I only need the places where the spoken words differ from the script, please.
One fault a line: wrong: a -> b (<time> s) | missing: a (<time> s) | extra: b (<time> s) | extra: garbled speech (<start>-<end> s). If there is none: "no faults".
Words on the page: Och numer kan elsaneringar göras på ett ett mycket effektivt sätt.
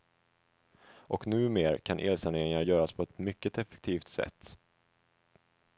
no faults